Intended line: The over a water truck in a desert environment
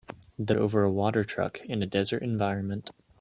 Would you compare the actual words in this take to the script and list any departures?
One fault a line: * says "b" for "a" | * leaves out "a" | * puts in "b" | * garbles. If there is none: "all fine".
all fine